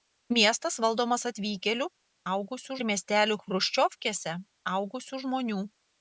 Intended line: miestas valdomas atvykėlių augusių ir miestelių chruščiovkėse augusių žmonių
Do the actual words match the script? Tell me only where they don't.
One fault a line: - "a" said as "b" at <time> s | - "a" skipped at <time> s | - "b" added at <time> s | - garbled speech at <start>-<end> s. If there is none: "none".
none